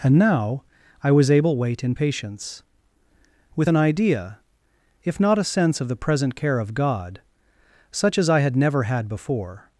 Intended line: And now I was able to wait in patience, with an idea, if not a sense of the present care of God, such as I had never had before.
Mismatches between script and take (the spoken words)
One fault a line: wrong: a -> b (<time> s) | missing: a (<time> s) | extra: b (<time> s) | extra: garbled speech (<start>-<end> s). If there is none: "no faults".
missing: to (1.6 s)